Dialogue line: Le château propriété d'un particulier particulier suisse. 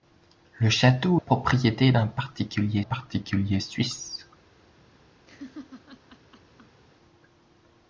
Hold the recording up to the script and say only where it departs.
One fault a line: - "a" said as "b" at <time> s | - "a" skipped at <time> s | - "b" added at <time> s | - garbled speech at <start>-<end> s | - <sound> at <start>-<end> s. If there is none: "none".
- laugh at 5.3-6.8 s